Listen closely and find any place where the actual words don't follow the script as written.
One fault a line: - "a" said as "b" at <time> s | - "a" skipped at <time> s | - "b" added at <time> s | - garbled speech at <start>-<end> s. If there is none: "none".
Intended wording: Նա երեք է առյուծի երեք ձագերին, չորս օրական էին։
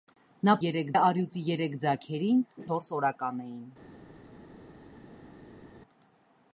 none